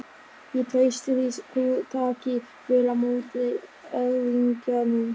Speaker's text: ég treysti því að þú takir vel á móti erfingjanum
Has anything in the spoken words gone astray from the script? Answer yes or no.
yes